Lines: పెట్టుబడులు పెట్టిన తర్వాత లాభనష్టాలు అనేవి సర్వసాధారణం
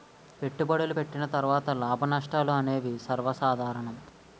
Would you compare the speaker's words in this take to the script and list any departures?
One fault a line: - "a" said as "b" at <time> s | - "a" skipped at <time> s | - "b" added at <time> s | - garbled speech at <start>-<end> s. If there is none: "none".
none